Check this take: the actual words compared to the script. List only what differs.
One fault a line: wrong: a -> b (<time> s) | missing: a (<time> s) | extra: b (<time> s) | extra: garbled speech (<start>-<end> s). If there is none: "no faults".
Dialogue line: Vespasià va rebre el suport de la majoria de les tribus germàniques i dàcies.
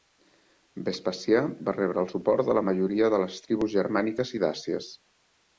no faults